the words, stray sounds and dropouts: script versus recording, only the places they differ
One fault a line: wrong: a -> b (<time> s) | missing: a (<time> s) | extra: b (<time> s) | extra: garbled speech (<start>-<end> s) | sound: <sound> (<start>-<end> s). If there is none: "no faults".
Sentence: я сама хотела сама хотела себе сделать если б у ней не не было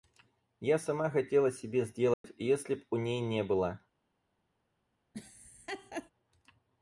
missing: сама хотела (1.5 s)
sound: dropout (2.1-2.2 s)
missing: не (3.4 s)
sound: laugh (5.1-6.1 s)